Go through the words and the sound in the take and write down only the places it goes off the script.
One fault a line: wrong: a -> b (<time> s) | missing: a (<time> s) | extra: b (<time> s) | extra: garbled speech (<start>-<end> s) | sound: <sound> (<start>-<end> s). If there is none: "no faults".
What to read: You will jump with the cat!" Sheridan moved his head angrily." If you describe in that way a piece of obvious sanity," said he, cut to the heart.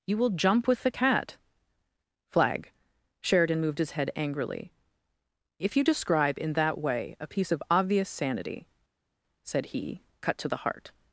extra: flag (2.3 s)